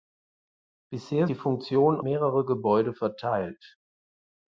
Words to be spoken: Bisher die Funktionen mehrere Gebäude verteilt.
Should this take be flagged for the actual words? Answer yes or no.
no